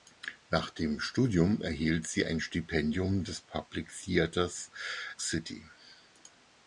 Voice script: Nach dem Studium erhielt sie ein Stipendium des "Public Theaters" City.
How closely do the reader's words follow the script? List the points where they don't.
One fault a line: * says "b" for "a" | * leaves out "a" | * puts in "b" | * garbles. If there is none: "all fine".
all fine